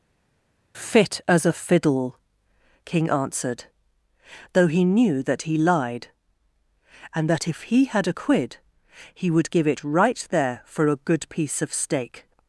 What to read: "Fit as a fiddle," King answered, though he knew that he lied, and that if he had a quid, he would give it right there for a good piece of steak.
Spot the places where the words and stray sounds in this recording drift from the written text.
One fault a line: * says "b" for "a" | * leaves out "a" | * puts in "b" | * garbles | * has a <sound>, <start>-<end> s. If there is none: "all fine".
all fine